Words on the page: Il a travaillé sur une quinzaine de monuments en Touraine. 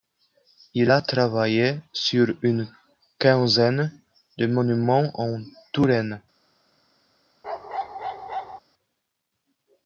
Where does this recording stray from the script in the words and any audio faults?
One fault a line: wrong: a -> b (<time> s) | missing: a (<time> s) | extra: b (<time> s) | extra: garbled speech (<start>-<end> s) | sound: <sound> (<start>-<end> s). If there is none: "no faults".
sound: bark (7.4-8.6 s)